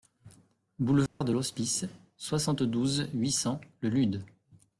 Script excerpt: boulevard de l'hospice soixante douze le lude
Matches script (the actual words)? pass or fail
fail